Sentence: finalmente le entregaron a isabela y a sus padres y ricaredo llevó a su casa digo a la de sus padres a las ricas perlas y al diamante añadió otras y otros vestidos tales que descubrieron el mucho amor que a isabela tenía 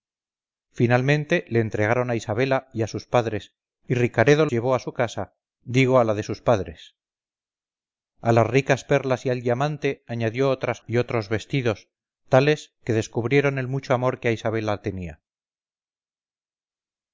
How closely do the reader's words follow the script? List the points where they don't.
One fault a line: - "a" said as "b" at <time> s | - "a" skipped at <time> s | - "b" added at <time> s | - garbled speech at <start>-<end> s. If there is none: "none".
none